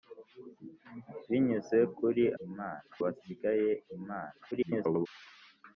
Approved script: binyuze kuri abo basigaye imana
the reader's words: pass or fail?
fail